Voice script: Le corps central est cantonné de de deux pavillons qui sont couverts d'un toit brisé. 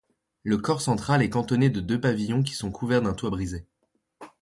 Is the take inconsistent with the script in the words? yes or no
yes